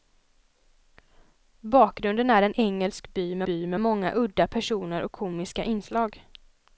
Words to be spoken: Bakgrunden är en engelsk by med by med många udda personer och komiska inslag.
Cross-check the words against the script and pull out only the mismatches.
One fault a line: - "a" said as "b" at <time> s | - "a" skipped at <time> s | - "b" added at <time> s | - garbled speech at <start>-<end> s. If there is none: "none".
none